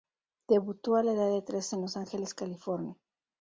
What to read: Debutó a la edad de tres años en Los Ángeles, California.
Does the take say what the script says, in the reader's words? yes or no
no